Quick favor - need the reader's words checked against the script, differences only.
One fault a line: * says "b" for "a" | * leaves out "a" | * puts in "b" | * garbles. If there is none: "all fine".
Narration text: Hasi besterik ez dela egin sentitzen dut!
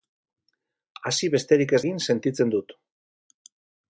* leaves out "dela"